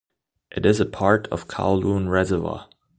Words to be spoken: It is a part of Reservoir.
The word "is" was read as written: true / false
true